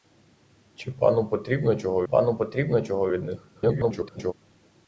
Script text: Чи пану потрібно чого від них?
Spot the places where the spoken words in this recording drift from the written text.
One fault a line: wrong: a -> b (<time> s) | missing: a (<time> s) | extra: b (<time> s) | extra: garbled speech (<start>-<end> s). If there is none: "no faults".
extra: пану потрібно чого (2.0 s)
extra: garbled speech (3.5-4.3 s)